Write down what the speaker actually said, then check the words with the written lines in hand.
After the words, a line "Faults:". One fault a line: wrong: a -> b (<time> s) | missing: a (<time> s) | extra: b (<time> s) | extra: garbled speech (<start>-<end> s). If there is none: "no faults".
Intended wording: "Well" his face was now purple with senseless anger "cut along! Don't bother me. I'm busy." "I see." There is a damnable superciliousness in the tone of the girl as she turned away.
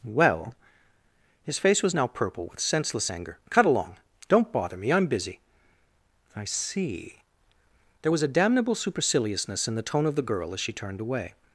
"Well" his face was now purple with senseless anger "cut along! Don't bother me. I'm busy." "I see." There was a damnable superciliousness in the tone of the girl as she turned away.
Faults:
wrong: is -> was (8.1 s)